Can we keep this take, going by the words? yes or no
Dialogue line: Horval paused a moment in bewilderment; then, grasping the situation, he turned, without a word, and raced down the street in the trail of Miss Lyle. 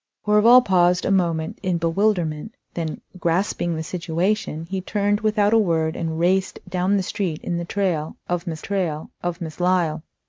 no